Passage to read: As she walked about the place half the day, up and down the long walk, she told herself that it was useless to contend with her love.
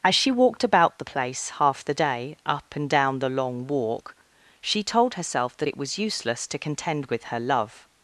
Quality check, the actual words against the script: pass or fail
pass